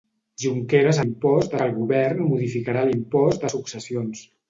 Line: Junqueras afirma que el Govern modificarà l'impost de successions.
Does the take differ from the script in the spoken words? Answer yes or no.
yes